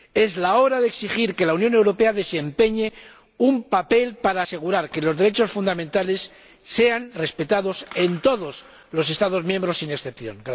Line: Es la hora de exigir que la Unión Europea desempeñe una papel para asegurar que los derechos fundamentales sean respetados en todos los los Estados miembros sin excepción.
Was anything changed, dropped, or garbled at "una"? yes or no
yes